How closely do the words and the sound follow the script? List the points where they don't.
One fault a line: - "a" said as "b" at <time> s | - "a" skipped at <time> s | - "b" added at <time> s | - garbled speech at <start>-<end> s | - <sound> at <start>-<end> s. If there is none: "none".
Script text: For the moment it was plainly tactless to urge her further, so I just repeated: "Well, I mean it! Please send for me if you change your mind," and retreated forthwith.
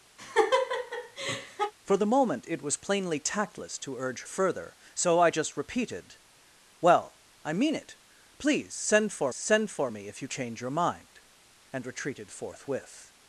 - laugh at 0.2-1.7 s
- "her" skipped at 4.2 s
- "send for" added at 9.3 s